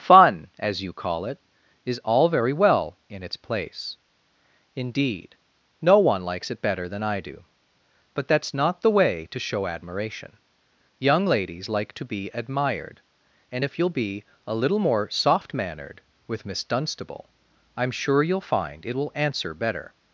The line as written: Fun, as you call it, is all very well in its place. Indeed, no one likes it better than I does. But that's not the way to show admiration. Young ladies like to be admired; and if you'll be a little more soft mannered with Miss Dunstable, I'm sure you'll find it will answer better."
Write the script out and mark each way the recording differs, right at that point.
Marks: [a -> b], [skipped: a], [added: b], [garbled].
Fun, as you call it, is all very well in its place. Indeed, no one likes it better than I [does. -> do] But that's not the way to show admiration. Young ladies like to be admired; and if you'll be a little more soft mannered with Miss Dunstable, I'm sure you'll find it will answer better."